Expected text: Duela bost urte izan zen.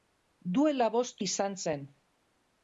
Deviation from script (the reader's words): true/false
true